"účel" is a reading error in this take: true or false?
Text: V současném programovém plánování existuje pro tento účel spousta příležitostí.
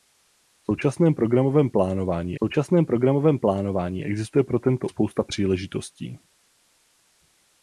true